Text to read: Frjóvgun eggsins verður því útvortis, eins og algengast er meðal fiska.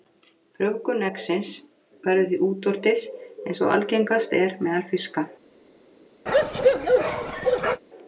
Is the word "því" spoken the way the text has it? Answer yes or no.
yes